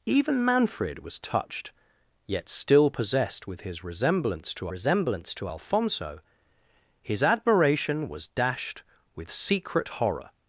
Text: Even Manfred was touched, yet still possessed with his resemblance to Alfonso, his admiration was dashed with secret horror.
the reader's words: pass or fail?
fail